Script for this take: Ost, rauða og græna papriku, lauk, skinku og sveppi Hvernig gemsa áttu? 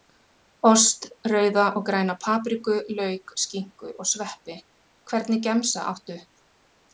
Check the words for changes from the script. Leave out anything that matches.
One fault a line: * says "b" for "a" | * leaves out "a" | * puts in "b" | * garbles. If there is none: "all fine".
all fine